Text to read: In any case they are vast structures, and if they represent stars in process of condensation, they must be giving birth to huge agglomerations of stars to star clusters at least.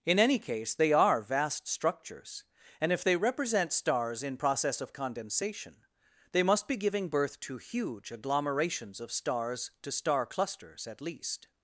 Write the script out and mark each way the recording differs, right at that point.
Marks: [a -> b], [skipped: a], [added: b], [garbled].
In any case they are vast structures, and if they represent stars in process of condensation, they must be giving birth to huge agglomerations of stars to star clusters at least.